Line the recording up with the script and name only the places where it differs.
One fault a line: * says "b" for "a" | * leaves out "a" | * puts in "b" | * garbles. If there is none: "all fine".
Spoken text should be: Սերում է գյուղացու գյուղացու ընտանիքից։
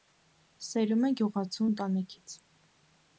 * leaves out "գյուղացու"